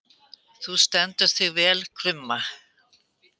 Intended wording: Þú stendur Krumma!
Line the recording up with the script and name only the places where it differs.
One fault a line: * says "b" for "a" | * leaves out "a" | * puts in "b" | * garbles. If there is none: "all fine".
* puts in "þig vel"